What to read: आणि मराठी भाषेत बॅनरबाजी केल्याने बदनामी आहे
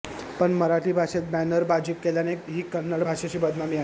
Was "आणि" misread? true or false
true